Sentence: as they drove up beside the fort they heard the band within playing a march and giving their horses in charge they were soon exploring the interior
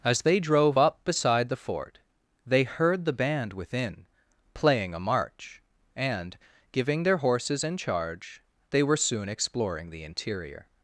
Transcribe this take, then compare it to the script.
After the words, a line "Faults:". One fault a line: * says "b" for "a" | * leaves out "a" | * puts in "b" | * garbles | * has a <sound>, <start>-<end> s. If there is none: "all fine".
as they drove up beside the fort they heard the band within playing a march and giving their horses in charge they were soon exploring the interior
Faults:
all fine